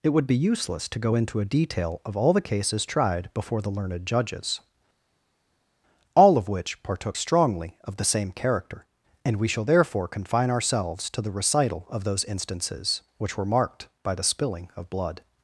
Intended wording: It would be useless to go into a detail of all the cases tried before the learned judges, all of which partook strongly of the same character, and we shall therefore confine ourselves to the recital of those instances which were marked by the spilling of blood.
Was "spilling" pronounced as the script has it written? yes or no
yes